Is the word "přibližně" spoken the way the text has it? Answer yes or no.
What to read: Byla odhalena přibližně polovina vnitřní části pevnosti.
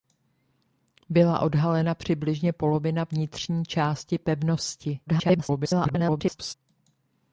yes